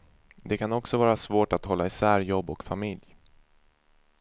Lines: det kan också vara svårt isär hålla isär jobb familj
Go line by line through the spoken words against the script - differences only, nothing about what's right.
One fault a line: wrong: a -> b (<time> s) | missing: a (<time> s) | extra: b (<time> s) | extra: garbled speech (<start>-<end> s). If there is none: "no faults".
wrong: isär -> att (1.5 s)
extra: och (2.5 s)